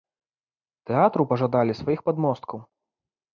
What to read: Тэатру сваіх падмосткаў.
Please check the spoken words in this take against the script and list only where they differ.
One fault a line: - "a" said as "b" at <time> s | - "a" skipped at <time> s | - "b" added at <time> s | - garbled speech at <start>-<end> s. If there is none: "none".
- "пажадалі" added at 1.3 s